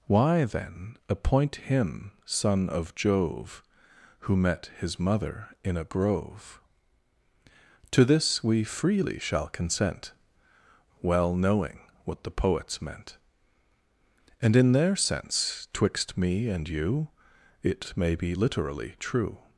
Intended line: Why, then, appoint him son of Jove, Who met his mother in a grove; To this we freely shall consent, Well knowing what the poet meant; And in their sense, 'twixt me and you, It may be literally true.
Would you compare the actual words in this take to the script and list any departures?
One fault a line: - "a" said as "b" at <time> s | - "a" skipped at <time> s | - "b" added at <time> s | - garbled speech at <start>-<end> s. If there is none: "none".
- "poet" said as "poets" at 12.3 s